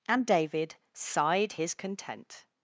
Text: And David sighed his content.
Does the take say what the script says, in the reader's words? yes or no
yes